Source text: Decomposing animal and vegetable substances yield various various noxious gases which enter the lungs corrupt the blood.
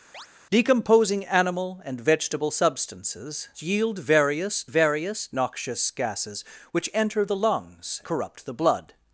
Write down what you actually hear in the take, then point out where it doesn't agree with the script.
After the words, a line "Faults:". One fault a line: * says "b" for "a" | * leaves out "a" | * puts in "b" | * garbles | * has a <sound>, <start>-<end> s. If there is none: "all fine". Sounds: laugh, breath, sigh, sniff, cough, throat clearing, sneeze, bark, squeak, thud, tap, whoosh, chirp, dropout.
Decomposing animal and vegetable substances yield various various noxious gases which enter the lungs corrupt the blood.
Faults:
* has a chirp, 0.1-0.3 s